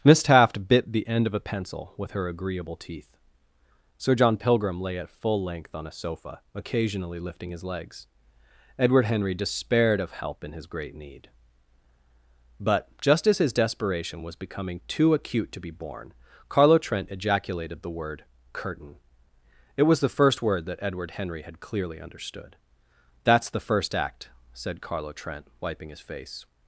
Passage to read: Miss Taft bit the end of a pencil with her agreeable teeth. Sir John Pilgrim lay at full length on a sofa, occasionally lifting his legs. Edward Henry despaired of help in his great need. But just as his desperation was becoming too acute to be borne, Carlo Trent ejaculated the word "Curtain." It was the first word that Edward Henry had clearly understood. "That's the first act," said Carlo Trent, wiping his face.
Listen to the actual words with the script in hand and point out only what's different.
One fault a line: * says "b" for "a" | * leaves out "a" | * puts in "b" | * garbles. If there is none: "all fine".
all fine